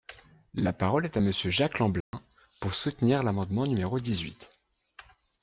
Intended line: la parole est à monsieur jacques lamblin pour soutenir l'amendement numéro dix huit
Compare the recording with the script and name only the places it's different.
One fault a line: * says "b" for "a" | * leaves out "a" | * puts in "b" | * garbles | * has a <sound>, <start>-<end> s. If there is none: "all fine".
* has a dropout, 2.0-2.1 s